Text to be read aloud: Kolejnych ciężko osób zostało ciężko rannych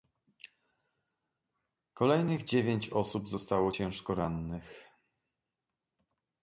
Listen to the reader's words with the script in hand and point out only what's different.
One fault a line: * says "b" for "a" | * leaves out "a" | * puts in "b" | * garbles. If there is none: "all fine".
* says "dziewięć" for "ciężko"